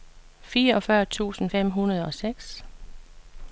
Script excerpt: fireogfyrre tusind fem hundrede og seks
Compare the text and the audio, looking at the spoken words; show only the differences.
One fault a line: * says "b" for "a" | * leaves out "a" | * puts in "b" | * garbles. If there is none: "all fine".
all fine